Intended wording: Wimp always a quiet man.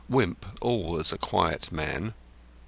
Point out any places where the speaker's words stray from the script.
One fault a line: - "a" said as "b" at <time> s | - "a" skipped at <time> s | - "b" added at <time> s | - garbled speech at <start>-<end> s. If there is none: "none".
none